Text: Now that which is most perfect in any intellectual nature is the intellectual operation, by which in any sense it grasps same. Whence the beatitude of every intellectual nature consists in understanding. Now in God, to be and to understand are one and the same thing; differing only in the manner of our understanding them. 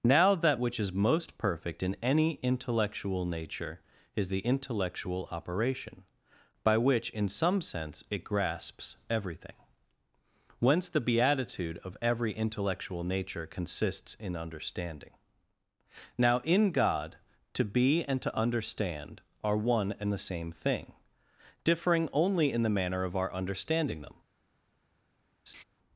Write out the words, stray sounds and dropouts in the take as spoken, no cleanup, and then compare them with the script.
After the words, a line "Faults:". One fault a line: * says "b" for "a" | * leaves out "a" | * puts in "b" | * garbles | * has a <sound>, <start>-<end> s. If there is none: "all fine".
Now that which is most perfect in any intellectual nature is the intellectual operation, by which in some sense it grasps everything. Whence the beatitude of every intellectual nature consists in understanding. Now in God, to be and to understand are one and the same thing; differing only in the manner of our understanding them.
Faults:
* says "some" for "any"
* says "everything" for "same"
* has a laugh, 25.5-25.6 s